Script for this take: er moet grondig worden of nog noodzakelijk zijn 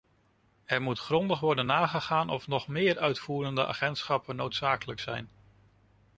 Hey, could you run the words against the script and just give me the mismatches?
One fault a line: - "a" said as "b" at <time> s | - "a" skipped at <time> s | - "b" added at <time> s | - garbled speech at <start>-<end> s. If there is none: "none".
- "nagegaan" added at 1.6 s
- "meer uitvoerende agentschappen" added at 2.7 s